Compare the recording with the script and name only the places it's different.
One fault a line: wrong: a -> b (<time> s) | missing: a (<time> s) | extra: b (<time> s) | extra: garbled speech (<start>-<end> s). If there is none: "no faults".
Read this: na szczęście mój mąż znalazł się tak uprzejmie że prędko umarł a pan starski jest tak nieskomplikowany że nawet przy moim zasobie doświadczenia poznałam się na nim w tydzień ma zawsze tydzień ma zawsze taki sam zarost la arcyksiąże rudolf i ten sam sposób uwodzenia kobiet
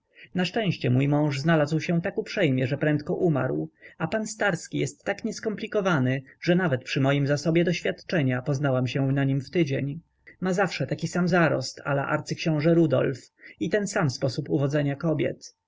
missing: tydzień ma zawsze (10.9 s)